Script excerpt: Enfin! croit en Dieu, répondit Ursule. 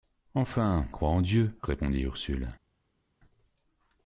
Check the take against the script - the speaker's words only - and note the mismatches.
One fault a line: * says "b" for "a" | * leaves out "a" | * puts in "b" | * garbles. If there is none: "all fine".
all fine